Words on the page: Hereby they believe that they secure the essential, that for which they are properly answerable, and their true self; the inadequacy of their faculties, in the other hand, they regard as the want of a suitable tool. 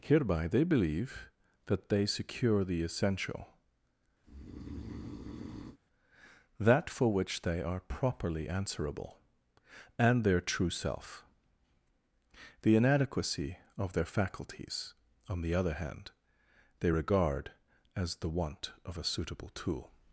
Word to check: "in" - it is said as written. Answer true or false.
false